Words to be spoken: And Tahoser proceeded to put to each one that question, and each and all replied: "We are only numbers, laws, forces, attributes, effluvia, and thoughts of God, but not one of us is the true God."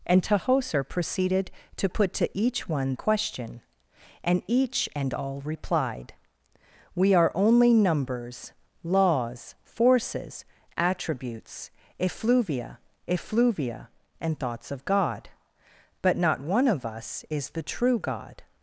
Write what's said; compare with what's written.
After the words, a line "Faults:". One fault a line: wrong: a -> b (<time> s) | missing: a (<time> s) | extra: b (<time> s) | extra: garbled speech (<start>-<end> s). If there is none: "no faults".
And Tahoser proceeded to put to each one question, and each and all replied: "We are only numbers, laws, forces, attributes, effluvia effluvia, and thoughts of God, but not one of us is the true God."
Faults:
missing: that (3.0 s)
extra: effluvia (13.1 s)